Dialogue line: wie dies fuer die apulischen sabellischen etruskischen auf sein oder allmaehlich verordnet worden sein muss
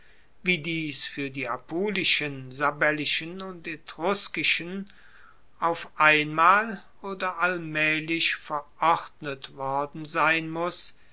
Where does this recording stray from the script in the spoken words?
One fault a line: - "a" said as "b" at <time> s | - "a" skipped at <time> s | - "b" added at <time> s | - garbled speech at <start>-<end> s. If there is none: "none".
- "und" added at 3.4 s
- "sein" said as "einmal" at 6.0 s